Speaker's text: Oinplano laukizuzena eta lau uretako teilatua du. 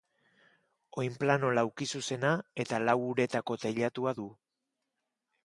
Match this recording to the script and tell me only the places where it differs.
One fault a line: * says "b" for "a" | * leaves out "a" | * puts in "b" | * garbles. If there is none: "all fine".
all fine